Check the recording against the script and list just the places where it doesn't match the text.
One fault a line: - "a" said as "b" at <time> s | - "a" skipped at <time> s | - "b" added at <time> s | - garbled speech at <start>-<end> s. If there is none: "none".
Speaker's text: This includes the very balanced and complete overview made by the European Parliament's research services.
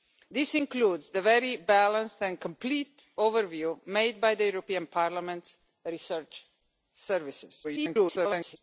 - garbled speech at 7.6-8.6 s